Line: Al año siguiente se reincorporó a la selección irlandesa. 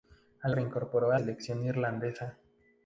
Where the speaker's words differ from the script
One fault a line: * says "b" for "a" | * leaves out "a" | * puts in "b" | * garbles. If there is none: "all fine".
* leaves out "año siguiente se"
* leaves out "la"